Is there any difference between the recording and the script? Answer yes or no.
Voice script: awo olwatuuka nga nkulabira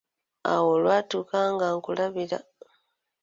no